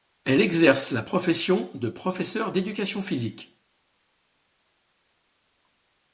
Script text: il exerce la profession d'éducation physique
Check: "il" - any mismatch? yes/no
yes